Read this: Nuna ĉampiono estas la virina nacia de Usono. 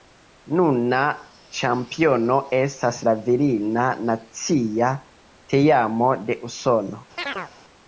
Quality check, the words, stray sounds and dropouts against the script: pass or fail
fail